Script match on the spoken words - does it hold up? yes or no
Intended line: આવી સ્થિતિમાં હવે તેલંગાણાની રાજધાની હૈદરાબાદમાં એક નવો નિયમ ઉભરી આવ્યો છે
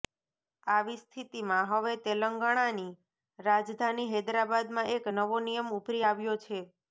yes